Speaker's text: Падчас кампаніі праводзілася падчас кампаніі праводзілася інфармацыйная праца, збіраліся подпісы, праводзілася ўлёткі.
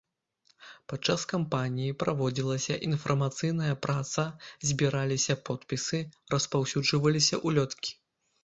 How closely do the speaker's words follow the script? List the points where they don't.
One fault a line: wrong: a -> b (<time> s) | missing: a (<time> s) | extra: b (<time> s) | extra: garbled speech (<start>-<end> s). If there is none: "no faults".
missing: падчас кампаніі праводзілася (2.8 s)
wrong: праводзілася -> распаўсюджваліся (6.4 s)